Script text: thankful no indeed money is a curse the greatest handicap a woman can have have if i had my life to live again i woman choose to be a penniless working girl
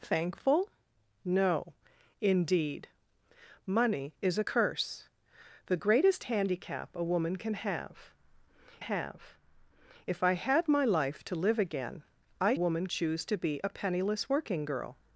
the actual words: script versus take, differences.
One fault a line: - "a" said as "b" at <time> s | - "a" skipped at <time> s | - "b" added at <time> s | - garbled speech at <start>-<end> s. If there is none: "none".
none